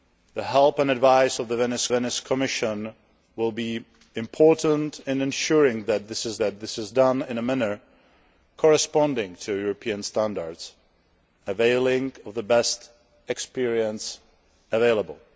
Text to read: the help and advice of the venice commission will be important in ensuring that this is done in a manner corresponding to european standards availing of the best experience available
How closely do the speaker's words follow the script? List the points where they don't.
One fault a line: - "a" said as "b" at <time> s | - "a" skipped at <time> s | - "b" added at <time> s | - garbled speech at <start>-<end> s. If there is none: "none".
- "venice" added at 1.9 s
- "that this is" added at 6.4 s